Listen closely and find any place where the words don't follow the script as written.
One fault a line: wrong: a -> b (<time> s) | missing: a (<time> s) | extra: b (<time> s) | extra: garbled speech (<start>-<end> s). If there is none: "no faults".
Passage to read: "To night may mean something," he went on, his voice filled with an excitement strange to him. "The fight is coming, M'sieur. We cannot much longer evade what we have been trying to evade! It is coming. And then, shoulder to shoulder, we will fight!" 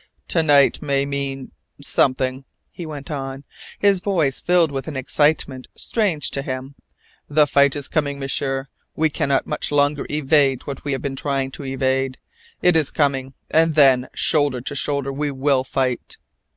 no faults